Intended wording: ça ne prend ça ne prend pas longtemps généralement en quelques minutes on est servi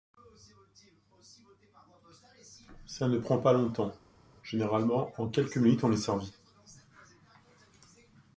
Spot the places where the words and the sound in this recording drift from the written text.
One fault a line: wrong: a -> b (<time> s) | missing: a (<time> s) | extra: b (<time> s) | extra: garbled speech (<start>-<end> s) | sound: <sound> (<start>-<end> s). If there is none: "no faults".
missing: ça ne prend (3.4 s)